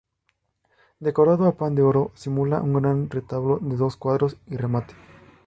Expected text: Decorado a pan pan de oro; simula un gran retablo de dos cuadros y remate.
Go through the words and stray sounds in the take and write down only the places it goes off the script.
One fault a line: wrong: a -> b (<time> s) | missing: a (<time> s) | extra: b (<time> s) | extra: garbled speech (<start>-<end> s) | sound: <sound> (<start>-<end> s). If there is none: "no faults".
missing: pan (1.8 s)